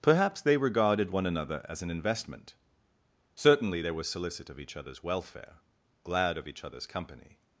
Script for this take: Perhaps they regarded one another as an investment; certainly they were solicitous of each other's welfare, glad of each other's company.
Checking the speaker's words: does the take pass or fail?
pass